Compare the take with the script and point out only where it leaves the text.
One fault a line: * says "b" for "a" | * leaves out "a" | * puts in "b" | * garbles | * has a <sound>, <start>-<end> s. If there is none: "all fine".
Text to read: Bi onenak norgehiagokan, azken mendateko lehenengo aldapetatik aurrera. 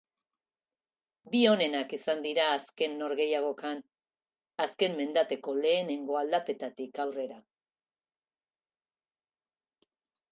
* puts in "izan dira azken"